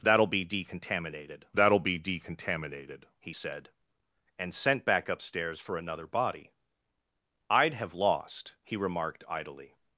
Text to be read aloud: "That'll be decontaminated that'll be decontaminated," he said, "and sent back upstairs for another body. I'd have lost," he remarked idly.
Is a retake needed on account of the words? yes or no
no